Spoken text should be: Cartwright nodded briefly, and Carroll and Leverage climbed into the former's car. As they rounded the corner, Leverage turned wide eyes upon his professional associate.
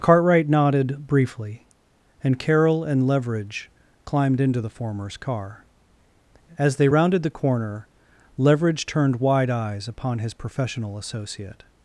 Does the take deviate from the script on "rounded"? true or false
false